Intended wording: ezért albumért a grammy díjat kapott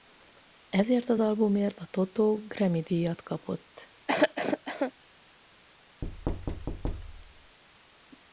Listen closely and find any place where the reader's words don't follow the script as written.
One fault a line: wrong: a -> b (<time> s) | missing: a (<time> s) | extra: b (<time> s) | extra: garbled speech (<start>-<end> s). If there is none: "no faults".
extra: az (1.1 s)
extra: toto (1.9 s)